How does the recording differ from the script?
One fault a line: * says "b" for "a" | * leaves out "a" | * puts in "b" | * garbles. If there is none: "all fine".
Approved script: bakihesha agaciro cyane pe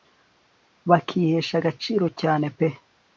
all fine